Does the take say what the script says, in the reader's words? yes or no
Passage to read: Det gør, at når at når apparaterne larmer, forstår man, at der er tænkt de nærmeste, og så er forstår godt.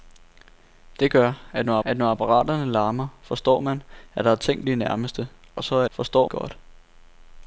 yes